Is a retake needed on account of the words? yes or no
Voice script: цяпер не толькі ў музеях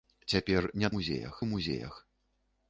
yes